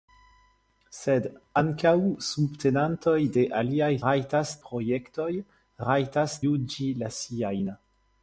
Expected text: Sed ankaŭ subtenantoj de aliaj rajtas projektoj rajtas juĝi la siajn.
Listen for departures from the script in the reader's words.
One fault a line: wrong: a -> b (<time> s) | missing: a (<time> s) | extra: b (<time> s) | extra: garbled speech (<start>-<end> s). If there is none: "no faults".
no faults